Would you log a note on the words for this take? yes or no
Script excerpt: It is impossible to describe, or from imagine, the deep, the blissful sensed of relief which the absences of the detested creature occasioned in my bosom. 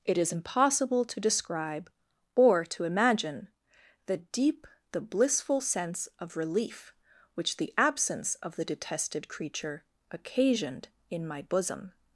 yes